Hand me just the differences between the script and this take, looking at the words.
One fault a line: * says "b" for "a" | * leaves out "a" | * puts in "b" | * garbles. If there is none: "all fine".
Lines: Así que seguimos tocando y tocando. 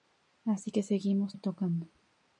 * leaves out "tocando"